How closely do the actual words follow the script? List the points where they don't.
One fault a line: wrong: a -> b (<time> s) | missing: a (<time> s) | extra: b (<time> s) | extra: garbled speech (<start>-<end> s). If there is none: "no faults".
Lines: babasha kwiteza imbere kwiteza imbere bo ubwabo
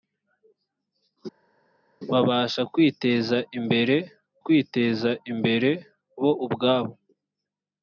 no faults